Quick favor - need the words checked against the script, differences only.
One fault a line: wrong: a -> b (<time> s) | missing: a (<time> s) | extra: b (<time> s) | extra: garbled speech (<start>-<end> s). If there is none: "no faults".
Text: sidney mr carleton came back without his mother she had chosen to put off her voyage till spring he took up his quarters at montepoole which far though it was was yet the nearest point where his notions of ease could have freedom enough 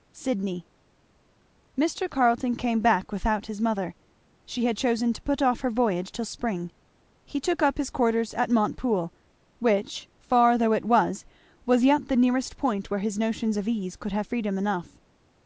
no faults